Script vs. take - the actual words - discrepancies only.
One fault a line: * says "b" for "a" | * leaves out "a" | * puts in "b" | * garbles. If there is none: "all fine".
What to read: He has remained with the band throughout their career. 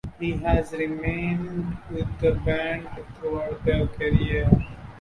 all fine